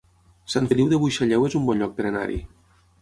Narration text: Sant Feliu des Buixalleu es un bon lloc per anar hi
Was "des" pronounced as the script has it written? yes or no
no